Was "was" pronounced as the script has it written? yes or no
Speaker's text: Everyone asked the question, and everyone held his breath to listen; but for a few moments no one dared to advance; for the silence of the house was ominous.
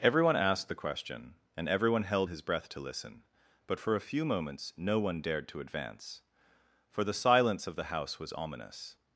yes